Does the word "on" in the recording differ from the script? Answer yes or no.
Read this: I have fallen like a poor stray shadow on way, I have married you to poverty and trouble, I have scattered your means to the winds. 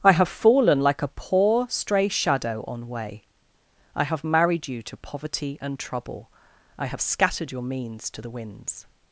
no